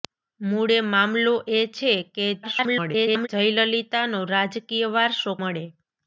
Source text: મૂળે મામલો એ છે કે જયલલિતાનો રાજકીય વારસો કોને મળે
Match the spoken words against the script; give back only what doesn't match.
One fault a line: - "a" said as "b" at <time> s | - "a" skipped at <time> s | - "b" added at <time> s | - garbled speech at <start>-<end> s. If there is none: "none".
- garbled speech at 2.4-3.3 s
- "કોને" skipped at 5.3 s